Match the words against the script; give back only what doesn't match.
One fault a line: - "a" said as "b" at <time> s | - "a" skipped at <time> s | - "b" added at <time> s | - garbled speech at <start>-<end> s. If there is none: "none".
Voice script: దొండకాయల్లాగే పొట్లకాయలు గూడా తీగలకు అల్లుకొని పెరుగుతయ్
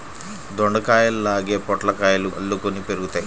- "గూడా తీగలకు" skipped at 2.3 s